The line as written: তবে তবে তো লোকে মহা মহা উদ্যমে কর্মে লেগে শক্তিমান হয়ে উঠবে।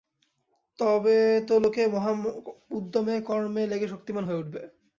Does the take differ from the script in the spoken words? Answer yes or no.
yes